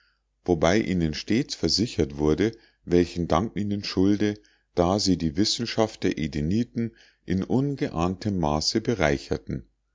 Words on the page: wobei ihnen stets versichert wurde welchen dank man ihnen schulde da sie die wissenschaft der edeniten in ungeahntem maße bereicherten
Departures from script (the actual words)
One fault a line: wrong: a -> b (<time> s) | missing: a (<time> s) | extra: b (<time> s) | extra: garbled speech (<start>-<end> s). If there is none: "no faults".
missing: man (3.5 s)